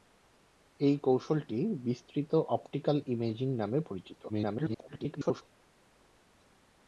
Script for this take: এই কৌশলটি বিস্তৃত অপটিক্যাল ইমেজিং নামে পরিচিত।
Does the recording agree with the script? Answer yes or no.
no